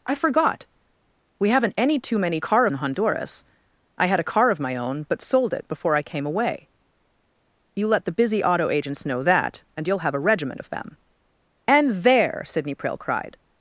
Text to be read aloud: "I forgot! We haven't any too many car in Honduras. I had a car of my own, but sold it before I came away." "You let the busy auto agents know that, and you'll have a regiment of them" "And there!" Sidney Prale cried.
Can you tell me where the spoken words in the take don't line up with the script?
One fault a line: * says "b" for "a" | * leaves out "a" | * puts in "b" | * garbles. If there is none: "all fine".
all fine